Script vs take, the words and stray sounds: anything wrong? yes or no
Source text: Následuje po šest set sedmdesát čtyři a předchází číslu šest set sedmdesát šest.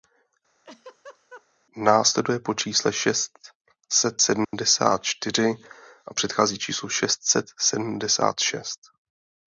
yes